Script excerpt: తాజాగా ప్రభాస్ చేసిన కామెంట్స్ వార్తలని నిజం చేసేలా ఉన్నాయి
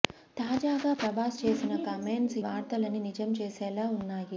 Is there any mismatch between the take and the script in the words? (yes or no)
no